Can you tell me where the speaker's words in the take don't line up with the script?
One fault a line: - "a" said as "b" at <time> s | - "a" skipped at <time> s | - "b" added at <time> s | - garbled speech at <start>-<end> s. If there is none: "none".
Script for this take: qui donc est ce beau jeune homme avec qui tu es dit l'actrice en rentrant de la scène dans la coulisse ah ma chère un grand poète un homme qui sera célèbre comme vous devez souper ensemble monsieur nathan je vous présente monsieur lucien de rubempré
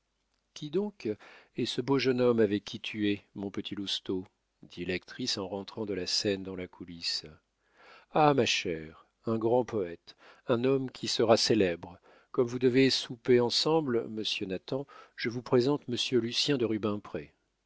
- "mon petit lousteau" added at 3.4 s